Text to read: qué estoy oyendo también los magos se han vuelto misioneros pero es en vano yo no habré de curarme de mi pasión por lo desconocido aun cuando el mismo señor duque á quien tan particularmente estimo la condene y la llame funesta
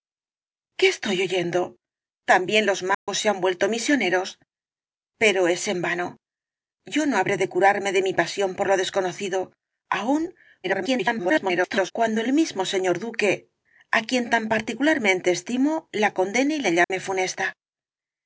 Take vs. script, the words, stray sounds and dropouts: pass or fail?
fail